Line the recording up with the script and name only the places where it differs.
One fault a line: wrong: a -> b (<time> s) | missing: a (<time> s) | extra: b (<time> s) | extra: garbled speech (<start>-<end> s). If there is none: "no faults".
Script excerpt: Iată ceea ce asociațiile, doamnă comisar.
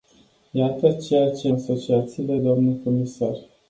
no faults